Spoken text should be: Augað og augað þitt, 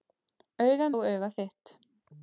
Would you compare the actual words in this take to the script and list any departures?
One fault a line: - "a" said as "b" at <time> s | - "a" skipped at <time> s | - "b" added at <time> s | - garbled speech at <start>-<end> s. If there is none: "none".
none